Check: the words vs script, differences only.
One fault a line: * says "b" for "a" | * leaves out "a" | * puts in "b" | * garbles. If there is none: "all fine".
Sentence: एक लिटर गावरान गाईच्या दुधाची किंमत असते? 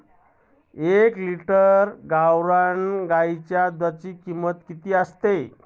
* puts in "किती"